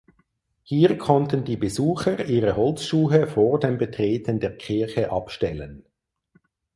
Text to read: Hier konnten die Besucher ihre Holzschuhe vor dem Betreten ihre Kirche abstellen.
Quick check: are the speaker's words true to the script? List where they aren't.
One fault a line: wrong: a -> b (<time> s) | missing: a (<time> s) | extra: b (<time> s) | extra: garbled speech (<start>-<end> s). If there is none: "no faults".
wrong: ihre -> der (4.4 s)